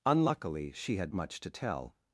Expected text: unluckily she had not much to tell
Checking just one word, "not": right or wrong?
wrong